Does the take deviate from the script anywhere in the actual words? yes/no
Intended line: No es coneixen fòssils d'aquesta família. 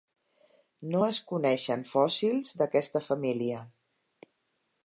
no